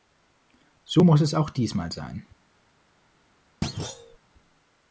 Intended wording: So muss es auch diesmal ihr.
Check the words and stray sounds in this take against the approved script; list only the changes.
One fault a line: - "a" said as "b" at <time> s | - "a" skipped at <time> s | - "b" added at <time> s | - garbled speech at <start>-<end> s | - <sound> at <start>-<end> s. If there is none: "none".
- "ihr" said as "sein" at 1.9 s
- thud at 3.6-4.2 s